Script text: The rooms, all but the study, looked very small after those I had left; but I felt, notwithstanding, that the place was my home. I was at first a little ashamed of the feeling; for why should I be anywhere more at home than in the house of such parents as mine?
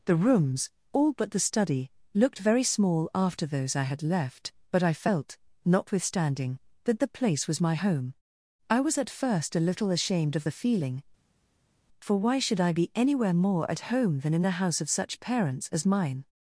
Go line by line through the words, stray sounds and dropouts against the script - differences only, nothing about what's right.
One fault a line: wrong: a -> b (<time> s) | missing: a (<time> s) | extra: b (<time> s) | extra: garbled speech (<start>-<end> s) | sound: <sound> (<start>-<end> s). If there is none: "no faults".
no faults